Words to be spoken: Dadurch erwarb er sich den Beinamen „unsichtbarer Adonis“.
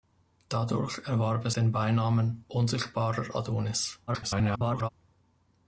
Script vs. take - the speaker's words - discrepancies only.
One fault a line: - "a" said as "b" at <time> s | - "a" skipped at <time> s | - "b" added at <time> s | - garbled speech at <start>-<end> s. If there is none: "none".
- "sich" skipped at 1.5 s
- garbled speech at 4.1-4.9 s